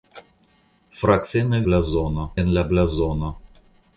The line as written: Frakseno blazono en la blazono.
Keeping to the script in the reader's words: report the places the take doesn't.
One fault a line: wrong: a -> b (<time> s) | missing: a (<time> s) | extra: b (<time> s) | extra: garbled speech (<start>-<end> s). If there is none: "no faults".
no faults